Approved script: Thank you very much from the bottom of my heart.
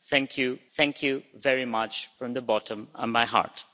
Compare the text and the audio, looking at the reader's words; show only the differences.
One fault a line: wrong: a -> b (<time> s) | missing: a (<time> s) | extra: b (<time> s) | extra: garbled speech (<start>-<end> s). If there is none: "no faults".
extra: thank you (0.8 s)